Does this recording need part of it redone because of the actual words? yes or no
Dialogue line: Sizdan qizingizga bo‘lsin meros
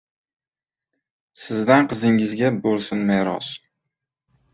no